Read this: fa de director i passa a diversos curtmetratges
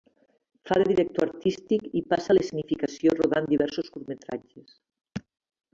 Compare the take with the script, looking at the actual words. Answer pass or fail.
fail